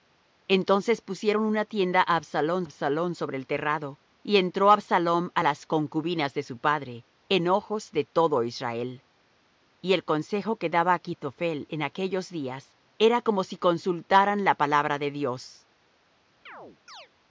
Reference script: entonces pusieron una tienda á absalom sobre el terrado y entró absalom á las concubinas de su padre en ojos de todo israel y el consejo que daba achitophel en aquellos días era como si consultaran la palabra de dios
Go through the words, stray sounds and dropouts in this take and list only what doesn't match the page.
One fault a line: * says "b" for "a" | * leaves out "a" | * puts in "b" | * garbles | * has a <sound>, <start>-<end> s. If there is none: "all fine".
* puts in "absalom"
* has a chirp, 16.5-17.1 s